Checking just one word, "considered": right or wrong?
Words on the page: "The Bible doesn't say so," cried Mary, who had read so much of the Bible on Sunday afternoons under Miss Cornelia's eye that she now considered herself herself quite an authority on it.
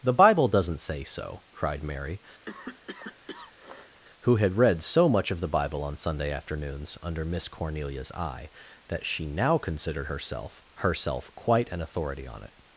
right